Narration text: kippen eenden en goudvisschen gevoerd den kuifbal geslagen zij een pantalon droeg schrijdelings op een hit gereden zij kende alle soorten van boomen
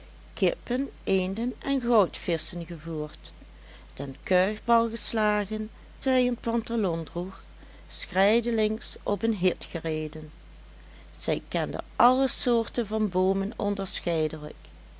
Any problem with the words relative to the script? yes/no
no